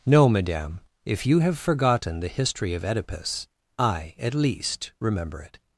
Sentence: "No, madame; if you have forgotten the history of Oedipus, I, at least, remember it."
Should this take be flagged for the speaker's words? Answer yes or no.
no